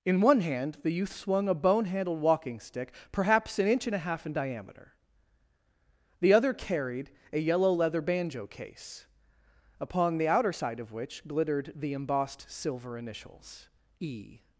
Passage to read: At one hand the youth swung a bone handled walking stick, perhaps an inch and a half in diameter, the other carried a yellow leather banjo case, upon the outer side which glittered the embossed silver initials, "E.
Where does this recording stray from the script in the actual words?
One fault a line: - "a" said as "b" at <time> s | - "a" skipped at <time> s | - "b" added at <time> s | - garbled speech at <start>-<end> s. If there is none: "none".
- "At" said as "In" at 0.1 s
- "of" added at 10.8 s